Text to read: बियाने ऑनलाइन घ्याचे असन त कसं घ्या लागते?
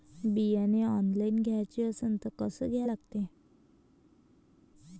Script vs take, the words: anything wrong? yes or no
no